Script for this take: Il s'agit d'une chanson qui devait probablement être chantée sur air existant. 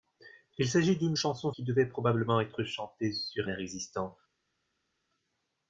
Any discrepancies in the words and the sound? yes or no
no